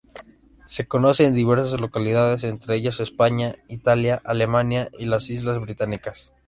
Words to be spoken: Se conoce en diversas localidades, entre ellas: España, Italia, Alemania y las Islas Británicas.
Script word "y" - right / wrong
right